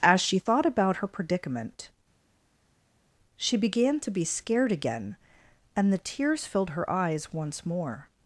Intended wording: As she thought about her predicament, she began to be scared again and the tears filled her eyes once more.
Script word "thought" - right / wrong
right